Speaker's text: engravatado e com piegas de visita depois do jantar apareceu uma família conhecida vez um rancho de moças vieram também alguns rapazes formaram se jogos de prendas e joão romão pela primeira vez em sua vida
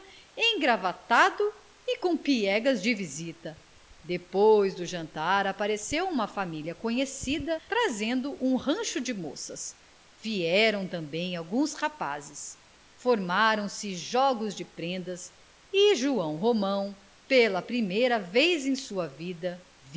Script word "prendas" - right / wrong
right